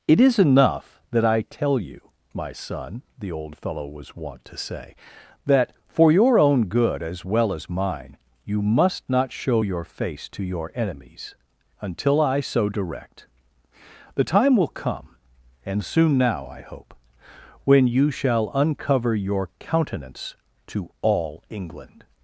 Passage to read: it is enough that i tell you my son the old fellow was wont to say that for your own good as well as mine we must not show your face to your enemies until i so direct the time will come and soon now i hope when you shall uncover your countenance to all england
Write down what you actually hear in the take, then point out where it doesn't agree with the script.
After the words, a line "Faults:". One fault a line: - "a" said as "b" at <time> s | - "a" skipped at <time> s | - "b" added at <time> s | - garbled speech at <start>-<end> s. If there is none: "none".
it is enough that i tell you my son the old fellow was wont to say that for your own good as well as mine you must not show your face to your enemies until i so direct the time will come and soon now i hope when you shall uncover your countenance to all england
Faults:
- "we" said as "you" at 8.4 s